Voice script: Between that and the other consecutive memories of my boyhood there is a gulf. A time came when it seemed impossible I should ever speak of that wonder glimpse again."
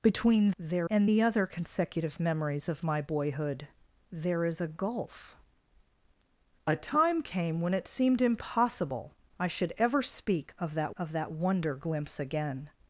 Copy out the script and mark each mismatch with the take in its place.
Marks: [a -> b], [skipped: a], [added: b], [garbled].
Between [that -> there] and the other consecutive memories of my boyhood there is a gulf. A time came when it seemed impossible I should ever speak of that [added: of that] wonder glimpse again."